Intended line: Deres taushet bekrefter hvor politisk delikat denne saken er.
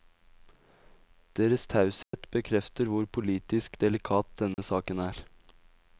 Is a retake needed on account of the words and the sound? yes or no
yes